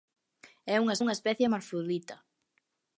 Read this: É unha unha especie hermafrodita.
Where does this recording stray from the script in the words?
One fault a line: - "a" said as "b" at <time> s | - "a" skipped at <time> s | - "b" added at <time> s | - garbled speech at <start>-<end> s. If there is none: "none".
none